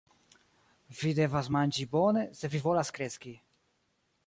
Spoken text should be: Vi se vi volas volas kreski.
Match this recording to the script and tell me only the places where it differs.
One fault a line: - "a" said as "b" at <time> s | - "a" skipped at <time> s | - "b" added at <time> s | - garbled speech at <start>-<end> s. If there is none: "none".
- "devas manĝi bone" added at 1.2 s
- "volas" skipped at 2.9 s